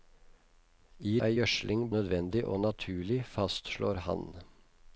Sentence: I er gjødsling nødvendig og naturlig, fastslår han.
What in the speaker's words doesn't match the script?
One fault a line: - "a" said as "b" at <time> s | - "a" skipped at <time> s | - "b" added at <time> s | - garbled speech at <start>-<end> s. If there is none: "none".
none